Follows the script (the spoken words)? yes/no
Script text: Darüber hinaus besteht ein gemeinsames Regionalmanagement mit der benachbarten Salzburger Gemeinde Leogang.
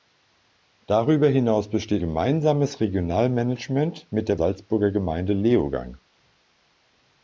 no